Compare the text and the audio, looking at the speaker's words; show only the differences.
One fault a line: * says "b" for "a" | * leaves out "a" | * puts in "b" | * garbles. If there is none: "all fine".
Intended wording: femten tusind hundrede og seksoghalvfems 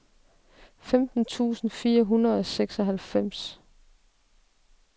* puts in "fire"